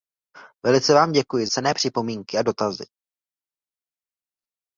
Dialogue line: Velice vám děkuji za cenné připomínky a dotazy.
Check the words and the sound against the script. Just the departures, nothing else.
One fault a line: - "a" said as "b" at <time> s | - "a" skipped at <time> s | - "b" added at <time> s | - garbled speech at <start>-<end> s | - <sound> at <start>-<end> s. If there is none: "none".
- "za" skipped at 1.5 s